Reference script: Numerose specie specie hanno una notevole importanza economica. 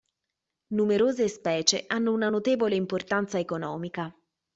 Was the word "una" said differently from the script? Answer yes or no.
no